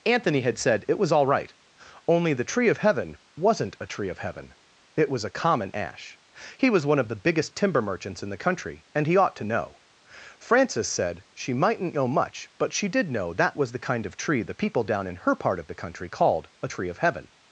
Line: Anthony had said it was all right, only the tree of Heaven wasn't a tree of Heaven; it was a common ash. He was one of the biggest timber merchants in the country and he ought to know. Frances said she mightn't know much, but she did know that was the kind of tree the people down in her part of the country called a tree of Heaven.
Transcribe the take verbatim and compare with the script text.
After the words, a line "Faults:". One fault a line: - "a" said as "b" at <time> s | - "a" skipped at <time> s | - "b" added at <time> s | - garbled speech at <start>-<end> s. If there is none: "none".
Anthony had said it was all right, only the tree of Heaven wasn't a tree of Heaven; it was a common ash. He was one of the biggest timber merchants in the country and he ought to know. Frances said she mightn't know much, but she did know that was the kind of tree the people down in her part of the country called a tree of Heaven.
Faults:
none